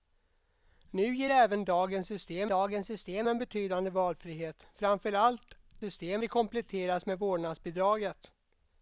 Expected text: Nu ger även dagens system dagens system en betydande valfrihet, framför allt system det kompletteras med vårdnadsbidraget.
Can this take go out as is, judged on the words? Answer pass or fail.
pass